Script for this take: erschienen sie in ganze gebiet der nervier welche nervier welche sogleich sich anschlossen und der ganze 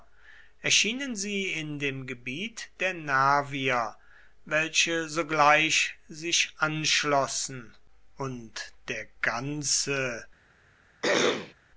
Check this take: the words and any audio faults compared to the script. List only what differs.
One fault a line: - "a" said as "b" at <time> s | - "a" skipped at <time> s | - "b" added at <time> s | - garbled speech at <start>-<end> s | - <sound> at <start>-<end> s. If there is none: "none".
- "ganze" said as "dem" at 1.8 s
- "nervier welche" skipped at 5.1 s
- throat clearing at 11.0-11.5 s